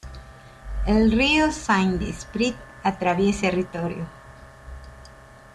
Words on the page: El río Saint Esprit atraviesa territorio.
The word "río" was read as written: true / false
true